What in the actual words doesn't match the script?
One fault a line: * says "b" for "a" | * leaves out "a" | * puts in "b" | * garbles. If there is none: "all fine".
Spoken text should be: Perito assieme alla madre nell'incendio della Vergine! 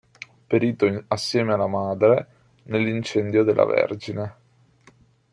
all fine